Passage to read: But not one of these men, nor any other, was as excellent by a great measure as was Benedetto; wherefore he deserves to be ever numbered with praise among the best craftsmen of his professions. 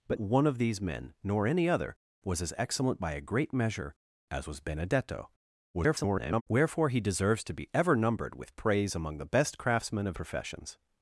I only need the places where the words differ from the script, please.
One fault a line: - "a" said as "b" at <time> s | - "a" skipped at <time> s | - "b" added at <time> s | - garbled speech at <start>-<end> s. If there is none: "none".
- "not" skipped at 0.2 s
- garbled speech at 5.7-6.4 s
- "his" skipped at 10.2 s